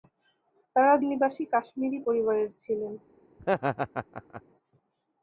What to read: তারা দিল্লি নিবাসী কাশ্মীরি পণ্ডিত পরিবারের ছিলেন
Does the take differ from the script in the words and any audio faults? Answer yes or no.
yes